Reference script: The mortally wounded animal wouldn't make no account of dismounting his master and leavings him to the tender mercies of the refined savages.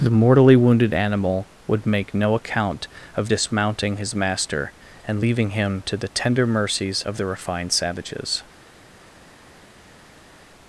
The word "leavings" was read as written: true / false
false